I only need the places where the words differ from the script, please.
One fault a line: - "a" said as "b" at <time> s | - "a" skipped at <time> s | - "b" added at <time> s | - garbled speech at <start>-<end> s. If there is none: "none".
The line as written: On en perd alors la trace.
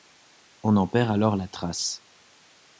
none